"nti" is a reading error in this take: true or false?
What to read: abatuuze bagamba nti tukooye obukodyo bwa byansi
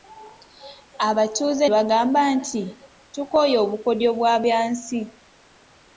false